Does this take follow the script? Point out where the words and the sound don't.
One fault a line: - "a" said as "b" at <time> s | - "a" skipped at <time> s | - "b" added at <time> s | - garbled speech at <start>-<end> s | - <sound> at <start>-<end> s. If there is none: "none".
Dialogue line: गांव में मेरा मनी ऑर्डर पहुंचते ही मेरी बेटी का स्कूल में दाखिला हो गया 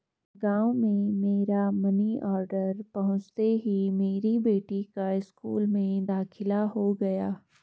none